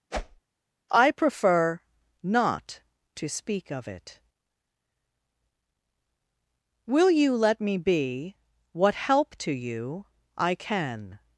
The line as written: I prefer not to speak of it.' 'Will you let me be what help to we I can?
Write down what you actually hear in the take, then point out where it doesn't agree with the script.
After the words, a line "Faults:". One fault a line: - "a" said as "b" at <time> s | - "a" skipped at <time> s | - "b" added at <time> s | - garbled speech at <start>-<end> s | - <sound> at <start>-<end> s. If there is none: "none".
I prefer not to speak of it.' 'Will you let me be what help to you I can?
Faults:
- whoosh at 0.1-0.4 s
- "we" said as "you" at 9.5 s